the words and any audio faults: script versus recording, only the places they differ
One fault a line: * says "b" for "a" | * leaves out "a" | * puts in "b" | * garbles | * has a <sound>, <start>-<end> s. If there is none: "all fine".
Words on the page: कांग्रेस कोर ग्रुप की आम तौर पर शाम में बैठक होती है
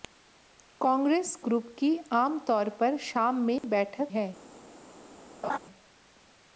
* leaves out "कोर"
* has a dropout, 3.6-3.6 s
* leaves out "होती"
* has a laugh, 5.4-5.6 s